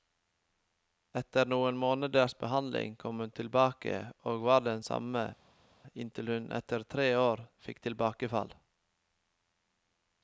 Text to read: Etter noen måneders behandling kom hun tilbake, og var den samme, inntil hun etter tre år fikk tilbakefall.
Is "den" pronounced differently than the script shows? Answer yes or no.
no